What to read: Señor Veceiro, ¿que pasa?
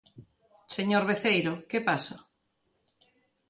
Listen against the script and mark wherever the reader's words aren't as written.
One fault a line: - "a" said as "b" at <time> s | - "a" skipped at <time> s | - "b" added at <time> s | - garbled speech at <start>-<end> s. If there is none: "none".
none